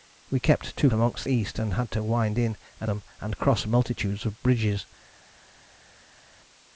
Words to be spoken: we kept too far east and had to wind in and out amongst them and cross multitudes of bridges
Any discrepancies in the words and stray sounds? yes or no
yes